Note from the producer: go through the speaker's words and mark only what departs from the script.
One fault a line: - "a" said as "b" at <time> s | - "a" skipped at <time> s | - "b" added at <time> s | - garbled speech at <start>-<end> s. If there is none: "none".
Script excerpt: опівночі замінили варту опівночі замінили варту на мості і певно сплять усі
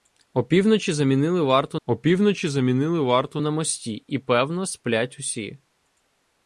none